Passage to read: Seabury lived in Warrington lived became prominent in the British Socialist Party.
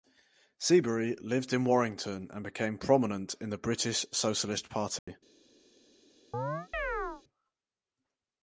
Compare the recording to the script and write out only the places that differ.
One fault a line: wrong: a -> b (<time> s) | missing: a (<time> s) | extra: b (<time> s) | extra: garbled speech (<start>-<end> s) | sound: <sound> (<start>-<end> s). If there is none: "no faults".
wrong: lived -> and (2.3 s)
sound: dropout (5.0-5.1 s)
sound: chirp (6.3-7.2 s)